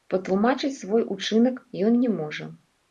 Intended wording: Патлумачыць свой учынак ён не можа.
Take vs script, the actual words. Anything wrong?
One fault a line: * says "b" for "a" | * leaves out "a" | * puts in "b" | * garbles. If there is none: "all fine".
all fine